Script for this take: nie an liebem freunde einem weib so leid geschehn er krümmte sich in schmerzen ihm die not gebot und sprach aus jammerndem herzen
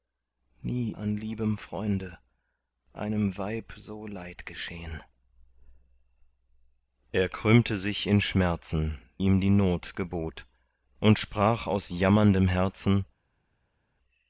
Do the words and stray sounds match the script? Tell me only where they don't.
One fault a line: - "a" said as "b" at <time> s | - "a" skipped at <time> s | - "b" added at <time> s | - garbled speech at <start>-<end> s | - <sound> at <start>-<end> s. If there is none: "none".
none